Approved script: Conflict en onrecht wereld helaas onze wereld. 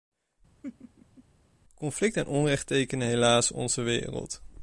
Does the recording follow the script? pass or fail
fail